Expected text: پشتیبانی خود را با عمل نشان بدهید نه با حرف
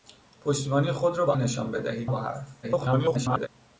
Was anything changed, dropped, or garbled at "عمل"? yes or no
yes